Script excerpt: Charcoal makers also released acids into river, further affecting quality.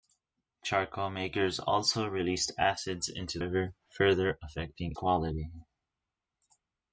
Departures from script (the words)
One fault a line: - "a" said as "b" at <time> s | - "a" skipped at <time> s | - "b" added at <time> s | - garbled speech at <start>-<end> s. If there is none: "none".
none